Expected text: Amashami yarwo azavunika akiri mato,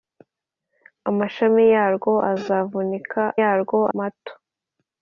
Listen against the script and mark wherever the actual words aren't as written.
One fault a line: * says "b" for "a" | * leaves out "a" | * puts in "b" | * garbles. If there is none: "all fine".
* says "yarwo" for "akiri"